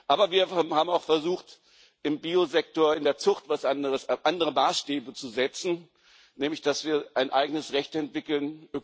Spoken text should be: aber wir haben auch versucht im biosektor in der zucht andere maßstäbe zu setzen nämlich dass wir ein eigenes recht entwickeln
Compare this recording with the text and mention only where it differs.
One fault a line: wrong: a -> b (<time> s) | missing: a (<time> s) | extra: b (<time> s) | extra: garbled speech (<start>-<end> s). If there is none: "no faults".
no faults